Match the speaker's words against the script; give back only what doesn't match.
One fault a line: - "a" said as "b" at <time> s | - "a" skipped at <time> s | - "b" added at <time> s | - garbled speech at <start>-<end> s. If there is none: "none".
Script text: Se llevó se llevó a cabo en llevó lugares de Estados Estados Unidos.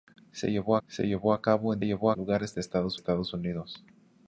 none